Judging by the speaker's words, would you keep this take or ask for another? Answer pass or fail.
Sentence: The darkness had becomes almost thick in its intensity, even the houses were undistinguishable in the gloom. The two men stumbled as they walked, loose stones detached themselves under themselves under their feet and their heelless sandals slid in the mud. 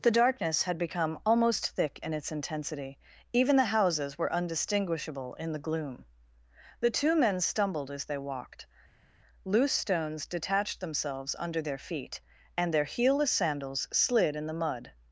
fail